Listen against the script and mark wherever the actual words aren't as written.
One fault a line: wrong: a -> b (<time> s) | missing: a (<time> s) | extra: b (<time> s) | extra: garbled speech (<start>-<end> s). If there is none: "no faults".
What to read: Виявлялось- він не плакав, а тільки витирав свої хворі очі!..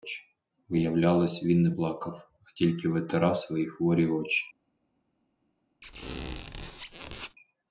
no faults